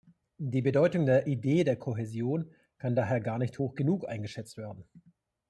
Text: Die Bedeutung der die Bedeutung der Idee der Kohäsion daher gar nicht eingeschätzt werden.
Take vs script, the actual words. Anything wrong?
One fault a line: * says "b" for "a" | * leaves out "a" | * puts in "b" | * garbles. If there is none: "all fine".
* leaves out "die Bedeutung der"
* puts in "kann"
* puts in "hoch genug"